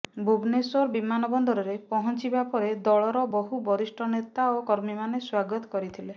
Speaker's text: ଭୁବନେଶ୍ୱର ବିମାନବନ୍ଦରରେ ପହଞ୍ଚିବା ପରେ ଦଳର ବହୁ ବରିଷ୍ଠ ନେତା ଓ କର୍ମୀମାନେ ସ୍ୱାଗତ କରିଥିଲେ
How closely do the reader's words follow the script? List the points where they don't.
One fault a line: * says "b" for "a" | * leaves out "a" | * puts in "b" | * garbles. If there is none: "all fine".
all fine